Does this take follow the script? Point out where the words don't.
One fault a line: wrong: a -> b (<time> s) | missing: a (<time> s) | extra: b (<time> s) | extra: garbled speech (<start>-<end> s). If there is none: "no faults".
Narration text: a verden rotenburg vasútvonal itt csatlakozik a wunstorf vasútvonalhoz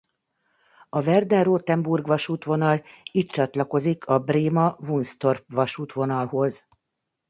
extra: bréma (4.2 s)